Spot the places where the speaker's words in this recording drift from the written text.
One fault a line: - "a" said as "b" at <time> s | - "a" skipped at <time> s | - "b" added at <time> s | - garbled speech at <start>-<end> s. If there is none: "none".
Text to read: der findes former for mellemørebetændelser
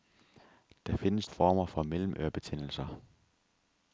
none